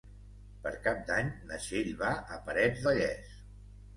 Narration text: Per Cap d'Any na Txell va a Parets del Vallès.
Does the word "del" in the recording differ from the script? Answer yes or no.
yes